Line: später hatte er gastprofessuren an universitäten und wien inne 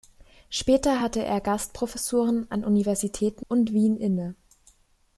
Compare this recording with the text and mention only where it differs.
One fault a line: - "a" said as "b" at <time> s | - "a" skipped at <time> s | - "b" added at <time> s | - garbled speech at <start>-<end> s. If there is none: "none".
none